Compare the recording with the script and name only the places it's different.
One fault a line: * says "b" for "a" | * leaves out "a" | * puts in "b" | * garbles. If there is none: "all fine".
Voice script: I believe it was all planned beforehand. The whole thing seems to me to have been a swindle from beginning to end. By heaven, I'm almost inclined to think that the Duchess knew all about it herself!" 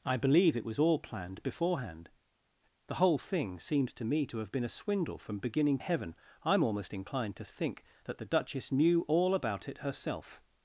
* leaves out "to end By"